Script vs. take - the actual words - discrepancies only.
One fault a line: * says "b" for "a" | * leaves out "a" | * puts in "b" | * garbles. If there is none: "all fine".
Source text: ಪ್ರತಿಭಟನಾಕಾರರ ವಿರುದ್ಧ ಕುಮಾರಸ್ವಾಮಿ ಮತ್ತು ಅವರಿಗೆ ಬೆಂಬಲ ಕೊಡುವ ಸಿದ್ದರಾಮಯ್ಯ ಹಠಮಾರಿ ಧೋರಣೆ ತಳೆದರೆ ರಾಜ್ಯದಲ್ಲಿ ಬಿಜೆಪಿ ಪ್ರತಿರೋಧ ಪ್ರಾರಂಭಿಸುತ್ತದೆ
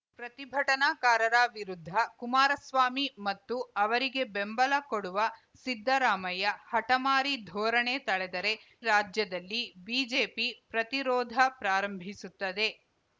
all fine